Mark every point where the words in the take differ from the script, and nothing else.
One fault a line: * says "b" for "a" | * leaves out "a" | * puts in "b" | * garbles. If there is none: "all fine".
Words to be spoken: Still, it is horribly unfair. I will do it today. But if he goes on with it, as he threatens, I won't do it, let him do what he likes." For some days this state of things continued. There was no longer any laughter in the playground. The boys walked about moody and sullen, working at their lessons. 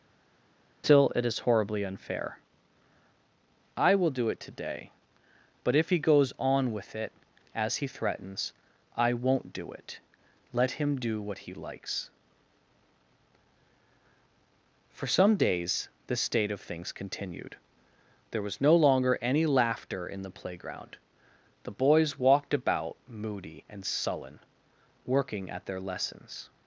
all fine